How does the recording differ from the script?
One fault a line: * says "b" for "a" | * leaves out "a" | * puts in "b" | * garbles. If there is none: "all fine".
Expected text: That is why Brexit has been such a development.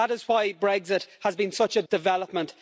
all fine